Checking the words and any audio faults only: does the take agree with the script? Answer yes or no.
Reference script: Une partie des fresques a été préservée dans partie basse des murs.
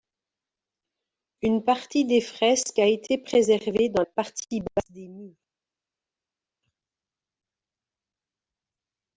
yes